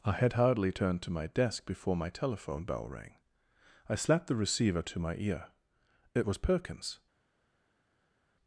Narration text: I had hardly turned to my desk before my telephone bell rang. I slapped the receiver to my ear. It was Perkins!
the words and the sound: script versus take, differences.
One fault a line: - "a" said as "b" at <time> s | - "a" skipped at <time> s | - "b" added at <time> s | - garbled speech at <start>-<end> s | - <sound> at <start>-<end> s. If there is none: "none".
none